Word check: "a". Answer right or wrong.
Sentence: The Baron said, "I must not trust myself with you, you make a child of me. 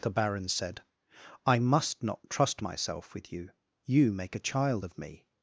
right